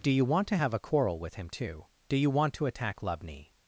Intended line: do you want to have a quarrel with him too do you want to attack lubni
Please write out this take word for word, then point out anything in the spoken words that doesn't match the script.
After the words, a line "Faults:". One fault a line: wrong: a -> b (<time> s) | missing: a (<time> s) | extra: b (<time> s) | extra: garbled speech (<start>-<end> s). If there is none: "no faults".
do you want to have a quarrel with him too do you want to attack lubni
Faults:
no faults